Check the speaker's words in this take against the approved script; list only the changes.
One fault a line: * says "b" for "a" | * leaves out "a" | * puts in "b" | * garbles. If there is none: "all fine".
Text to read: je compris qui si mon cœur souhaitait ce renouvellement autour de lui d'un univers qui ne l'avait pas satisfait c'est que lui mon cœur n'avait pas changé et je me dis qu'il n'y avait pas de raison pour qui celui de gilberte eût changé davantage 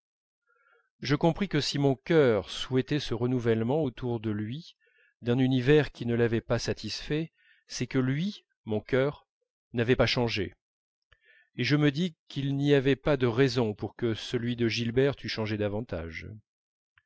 * says "que" for "qui"
* says "que" for "qui"